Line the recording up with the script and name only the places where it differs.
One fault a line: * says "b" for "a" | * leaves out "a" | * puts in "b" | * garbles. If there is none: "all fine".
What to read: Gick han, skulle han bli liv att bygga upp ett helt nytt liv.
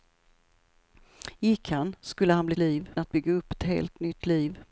all fine